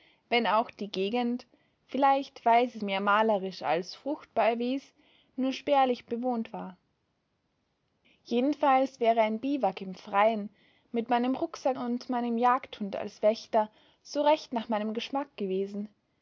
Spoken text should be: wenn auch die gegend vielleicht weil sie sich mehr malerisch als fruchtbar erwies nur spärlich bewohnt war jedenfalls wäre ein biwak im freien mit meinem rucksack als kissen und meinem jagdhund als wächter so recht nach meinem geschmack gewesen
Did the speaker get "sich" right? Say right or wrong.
wrong